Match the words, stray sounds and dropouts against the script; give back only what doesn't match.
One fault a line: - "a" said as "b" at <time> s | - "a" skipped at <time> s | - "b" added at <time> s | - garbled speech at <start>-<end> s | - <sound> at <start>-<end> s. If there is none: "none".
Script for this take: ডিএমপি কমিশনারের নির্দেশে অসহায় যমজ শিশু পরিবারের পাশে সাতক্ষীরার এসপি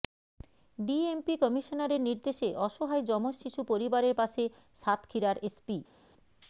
none